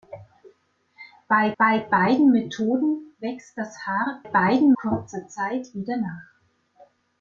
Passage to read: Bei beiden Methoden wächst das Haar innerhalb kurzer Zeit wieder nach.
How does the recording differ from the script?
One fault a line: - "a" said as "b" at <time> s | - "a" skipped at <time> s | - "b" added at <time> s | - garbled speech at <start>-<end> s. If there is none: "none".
- "bei" added at 1.6 s
- "innerhalb" said as "beiden" at 4.2 s